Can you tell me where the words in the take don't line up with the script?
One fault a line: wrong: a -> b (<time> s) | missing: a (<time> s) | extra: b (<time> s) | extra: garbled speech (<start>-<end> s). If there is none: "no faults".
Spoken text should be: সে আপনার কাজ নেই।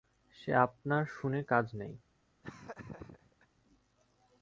extra: শুনে (1.1 s)